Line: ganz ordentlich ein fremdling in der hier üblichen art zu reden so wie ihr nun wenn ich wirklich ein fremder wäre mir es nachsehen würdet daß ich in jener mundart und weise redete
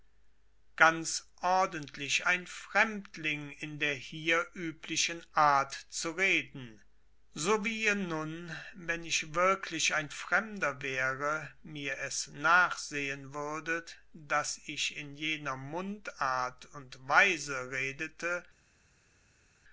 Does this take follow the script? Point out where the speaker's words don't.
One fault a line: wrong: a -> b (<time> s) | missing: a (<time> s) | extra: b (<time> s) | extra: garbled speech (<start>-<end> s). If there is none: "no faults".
no faults